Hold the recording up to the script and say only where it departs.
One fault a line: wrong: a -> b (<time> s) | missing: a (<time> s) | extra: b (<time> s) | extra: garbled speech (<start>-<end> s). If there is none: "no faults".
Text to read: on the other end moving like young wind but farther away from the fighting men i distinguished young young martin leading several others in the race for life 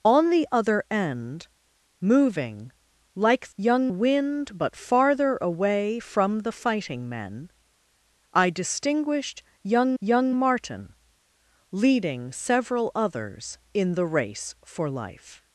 no faults